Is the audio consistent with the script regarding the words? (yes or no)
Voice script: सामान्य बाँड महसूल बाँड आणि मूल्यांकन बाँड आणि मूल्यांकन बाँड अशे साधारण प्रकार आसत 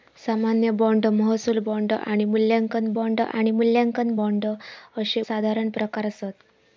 yes